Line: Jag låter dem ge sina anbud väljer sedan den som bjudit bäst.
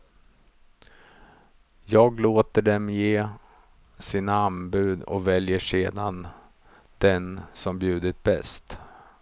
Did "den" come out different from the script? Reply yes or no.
no